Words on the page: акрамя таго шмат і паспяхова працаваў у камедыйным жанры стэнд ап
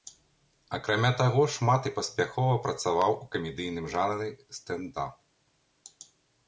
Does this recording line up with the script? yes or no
yes